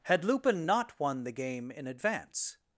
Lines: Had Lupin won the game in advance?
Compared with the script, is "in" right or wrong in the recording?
right